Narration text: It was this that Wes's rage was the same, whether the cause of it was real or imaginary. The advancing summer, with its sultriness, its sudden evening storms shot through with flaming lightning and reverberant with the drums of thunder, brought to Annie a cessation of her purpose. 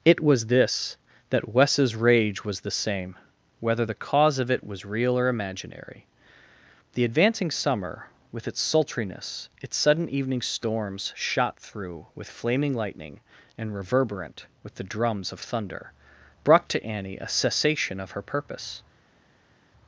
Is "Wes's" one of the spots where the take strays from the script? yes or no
no